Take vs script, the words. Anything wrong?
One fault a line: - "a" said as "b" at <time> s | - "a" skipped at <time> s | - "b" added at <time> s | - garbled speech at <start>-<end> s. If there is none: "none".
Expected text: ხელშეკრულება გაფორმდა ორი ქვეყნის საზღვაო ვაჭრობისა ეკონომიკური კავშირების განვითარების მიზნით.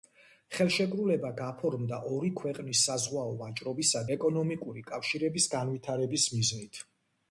none